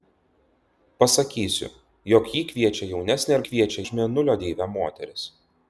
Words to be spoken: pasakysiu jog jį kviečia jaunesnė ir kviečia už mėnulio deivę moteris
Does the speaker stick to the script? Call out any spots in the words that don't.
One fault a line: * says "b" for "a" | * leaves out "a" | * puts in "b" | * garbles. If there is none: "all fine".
all fine